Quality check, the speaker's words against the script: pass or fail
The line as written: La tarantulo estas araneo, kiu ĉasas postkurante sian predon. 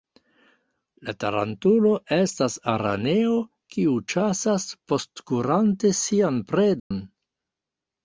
pass